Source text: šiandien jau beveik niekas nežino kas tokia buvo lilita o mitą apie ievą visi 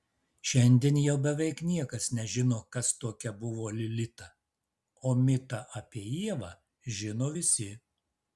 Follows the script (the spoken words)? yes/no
no